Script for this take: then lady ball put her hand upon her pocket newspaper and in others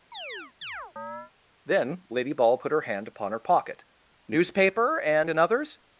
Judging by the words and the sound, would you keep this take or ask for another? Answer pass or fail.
fail